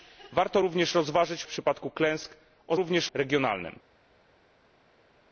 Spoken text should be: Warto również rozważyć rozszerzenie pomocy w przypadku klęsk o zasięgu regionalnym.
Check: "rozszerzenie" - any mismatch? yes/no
yes